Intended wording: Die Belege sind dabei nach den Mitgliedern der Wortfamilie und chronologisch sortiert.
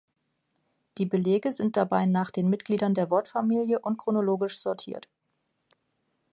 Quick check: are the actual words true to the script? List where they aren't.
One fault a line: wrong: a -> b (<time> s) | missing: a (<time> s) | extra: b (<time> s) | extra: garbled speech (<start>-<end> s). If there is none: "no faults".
no faults